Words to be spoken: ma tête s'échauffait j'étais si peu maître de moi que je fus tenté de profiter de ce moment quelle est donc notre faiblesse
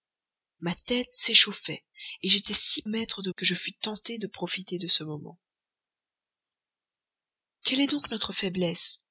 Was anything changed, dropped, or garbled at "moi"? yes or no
yes